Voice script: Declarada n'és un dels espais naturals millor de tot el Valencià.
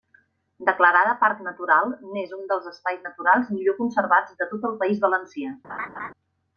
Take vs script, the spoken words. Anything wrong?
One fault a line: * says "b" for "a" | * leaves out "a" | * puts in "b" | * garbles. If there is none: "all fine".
* puts in "parc natural"
* puts in "conservats"
* puts in "País"